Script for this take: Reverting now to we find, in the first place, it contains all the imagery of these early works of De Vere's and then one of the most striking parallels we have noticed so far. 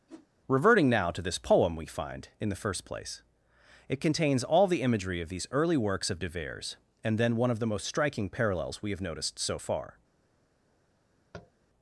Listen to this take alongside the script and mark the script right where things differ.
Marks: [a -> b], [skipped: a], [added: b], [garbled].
Reverting now to [added: this poem] we find, in the first place, it contains all the imagery of these early works of De Vere's and then one of the most striking parallels we have noticed so far.